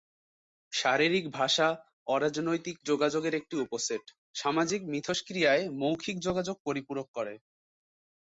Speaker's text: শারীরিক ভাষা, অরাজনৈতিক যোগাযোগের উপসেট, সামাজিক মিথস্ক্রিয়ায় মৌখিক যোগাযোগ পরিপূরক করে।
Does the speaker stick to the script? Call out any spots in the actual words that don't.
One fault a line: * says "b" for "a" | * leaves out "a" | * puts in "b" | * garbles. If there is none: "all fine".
* puts in "একটি"